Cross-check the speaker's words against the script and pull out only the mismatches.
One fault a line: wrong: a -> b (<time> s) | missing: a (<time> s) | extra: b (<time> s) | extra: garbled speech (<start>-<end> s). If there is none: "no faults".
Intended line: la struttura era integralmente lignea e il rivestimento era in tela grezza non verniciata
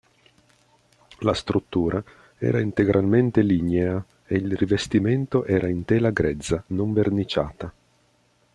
no faults